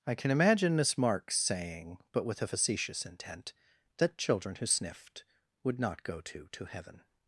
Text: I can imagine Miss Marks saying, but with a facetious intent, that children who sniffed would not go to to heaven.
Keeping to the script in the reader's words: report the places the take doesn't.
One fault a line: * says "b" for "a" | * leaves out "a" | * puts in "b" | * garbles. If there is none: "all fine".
all fine